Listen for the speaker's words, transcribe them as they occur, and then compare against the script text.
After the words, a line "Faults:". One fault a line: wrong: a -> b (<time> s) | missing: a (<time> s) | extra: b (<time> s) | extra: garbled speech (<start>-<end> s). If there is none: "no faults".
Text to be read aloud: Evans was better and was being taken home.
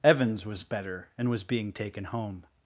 Evans was better and was being taken home.
Faults:
no faults